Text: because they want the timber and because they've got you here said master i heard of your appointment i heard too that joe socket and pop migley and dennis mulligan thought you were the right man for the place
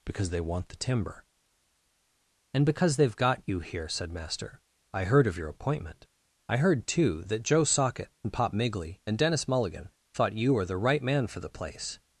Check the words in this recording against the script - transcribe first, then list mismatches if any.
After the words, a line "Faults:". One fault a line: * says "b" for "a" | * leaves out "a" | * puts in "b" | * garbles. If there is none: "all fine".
because they want the timber and because they've got you here said master i heard of your appointment i heard too that joe socket and pop migley and dennis mulligan thought you were the right man for the place
Faults:
all fine